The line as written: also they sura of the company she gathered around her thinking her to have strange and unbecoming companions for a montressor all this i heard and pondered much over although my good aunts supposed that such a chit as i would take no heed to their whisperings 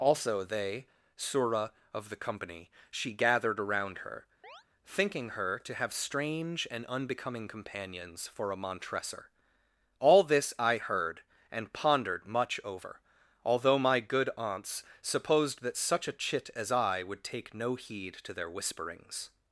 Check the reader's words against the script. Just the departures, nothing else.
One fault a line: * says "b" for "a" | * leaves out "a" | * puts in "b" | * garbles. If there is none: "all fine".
all fine